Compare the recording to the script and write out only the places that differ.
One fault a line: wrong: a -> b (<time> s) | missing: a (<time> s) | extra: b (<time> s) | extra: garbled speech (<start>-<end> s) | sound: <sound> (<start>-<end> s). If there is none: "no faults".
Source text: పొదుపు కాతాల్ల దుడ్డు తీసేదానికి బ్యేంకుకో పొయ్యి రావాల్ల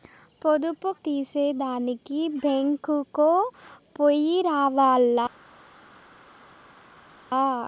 missing: కాతాల్ల దుడ్డు (0.9 s)